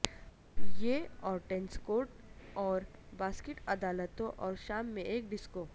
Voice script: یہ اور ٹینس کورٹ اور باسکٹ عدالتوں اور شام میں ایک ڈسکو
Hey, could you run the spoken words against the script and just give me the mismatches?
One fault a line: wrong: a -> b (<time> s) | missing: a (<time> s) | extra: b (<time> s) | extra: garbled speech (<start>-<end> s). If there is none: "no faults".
no faults